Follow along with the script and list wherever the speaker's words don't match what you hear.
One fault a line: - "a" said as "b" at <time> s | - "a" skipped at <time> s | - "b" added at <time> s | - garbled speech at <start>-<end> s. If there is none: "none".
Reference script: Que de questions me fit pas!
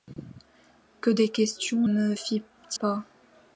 none